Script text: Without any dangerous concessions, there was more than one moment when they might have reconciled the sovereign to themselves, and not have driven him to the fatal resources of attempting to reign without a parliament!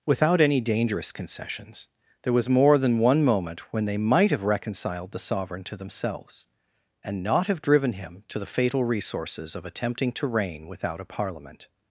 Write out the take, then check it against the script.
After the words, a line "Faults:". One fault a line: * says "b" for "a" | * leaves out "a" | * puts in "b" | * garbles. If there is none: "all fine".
Without any dangerous concessions, there was more than one moment when they might have reconciled the sovereign to themselves, and not have driven him to the fatal resources of attempting to reign without a parliament!
Faults:
all fine